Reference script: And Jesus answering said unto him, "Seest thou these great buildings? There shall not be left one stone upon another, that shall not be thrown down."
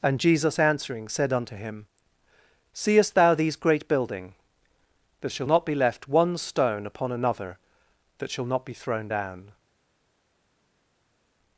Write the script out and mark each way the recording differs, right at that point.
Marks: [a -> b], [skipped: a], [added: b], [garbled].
And Jesus answering said unto him, "Seest thou these great [buildings? -> building] There shall not be left one stone upon another, that shall not be thrown down."